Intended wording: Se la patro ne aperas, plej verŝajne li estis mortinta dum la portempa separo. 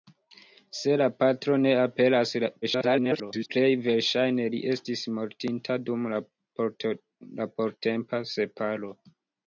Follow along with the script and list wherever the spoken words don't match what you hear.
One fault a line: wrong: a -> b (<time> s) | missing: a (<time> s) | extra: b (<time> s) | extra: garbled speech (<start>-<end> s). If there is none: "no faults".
extra: garbled speech (2.6-3.5 s)